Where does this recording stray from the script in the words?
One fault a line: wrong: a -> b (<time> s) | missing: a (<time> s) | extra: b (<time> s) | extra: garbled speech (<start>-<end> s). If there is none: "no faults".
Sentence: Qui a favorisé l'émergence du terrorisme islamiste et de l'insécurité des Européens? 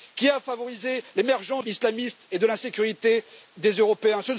missing: du terrorisme (1.6 s)